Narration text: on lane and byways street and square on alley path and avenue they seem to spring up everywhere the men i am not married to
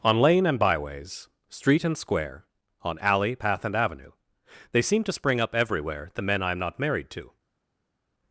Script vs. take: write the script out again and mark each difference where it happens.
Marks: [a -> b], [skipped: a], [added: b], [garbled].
on lane and byways street and square on alley path and avenue they seem to spring up everywhere the men i am not married to